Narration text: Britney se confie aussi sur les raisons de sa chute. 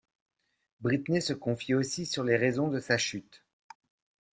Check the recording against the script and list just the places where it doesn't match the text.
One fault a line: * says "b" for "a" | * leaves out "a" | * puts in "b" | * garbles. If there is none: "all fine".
all fine